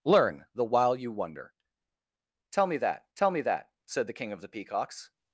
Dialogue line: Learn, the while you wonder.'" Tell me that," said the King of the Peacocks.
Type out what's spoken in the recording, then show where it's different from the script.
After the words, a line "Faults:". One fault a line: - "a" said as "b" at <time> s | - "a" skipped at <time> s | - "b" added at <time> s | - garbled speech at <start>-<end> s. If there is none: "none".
Learn, the while you wonder.'" Tell me that tell me that," said the King of the Peacocks.
Faults:
- "tell me that" added at 3.2 s